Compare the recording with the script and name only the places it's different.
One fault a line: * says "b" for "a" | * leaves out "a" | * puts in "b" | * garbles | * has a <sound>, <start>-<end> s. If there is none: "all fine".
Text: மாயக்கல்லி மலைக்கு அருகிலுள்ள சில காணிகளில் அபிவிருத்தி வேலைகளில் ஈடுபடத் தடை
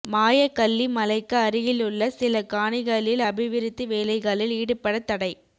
all fine